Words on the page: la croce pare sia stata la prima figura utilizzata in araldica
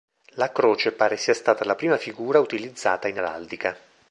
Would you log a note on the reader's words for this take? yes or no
no